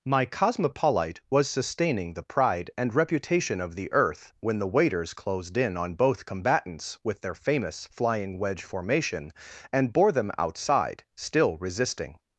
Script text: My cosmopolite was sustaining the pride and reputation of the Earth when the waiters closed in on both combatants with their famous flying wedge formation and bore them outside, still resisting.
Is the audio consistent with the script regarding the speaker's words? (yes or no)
yes